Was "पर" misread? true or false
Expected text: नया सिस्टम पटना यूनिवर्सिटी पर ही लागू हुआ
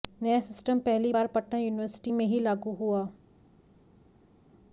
true